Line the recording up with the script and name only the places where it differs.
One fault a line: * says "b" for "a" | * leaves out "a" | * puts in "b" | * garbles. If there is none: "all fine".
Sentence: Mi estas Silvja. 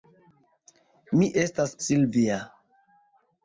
all fine